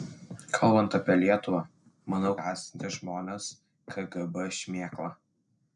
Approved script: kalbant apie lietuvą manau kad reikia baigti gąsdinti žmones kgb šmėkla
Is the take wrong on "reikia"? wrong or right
wrong